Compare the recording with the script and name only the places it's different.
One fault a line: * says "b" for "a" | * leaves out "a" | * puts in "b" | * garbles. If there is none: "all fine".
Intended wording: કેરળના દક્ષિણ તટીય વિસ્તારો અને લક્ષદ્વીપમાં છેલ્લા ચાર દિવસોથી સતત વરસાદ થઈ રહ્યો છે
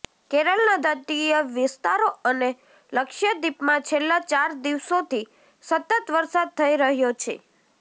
* leaves out "દક્ષિણ"